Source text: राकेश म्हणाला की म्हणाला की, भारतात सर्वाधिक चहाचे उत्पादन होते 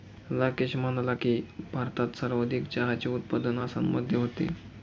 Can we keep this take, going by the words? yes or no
no